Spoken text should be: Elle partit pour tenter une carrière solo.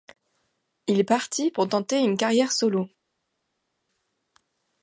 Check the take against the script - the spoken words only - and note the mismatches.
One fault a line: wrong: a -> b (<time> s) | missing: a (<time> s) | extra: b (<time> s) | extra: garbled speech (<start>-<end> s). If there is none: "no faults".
wrong: Elle -> Il (0.9 s)